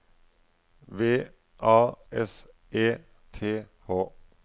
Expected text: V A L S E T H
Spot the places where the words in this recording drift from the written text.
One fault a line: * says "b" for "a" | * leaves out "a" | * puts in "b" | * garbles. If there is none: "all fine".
* leaves out "L"